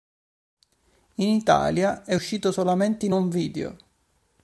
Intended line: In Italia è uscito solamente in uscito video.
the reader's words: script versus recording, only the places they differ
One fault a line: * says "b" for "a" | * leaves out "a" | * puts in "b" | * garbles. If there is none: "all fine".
* says "home" for "uscito"